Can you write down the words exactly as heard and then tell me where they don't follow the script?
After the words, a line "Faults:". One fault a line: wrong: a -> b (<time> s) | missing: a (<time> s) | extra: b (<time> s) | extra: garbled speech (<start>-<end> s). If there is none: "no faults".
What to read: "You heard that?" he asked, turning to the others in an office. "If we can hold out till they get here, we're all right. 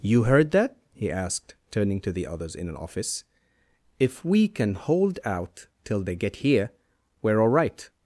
"You heard that?" he asked, turning to the others in an office. "If we can hold out till they get here, we're all right.
Faults:
no faults